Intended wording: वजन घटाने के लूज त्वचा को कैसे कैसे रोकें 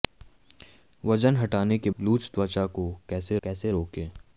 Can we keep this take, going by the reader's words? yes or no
yes